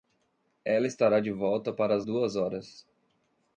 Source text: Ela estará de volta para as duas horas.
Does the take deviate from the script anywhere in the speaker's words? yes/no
no